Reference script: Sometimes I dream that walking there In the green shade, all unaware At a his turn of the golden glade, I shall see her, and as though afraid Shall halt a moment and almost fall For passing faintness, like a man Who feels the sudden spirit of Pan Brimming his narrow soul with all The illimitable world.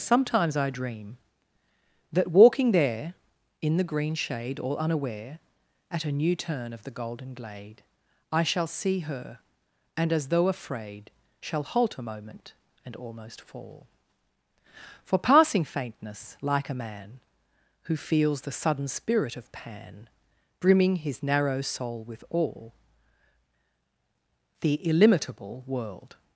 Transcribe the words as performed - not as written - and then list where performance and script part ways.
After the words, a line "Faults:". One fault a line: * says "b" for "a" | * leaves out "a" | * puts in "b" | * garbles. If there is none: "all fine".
Sometimes I dream that walking there In the green shade, all unaware At a new turn of the golden glade, I shall see her, and as though afraid Shall halt a moment and almost fall For passing faintness, like a man Who feels the sudden spirit of Pan Brimming his narrow soul with all The illimitable world.
Faults:
* says "new" for "his"